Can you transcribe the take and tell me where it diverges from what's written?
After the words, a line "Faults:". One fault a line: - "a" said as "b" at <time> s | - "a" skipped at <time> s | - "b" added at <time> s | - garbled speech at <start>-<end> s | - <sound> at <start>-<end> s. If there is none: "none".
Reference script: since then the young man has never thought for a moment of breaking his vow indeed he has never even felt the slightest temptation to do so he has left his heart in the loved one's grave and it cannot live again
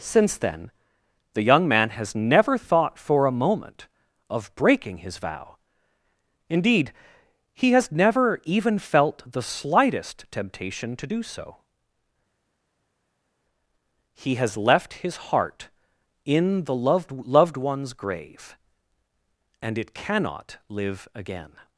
since then the young man has never thought for a moment of breaking his vow indeed he has never even felt the slightest temptation to do so he has left his heart in the loved loved one's grave and it cannot live again
Faults:
- "loved" added at 17.1 s